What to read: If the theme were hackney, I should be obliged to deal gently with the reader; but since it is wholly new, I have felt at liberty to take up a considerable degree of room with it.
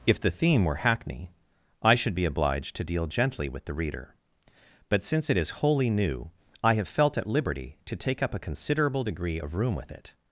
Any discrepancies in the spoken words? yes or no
no